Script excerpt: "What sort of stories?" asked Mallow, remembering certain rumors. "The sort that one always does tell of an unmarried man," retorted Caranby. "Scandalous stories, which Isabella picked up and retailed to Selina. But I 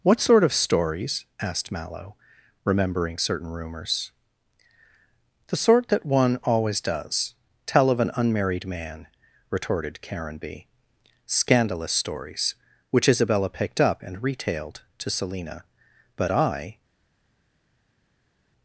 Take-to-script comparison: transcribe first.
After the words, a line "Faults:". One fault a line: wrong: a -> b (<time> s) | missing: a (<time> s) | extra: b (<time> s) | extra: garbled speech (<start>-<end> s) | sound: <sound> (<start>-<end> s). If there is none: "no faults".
"What sort of stories?" asked Mallow, remembering certain rumors. "The sort that one always does tell of an unmarried man," retorted Caranby. "Scandalous stories, which Isabella picked up and retailed to Selina. But I
Faults:
no faults